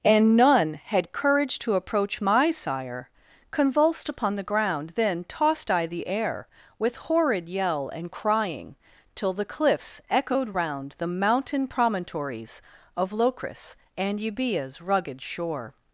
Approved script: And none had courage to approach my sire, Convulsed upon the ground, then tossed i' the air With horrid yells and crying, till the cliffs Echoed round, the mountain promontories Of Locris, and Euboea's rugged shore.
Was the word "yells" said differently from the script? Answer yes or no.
yes